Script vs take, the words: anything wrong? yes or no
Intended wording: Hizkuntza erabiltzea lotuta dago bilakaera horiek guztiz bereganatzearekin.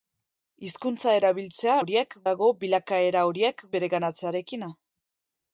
yes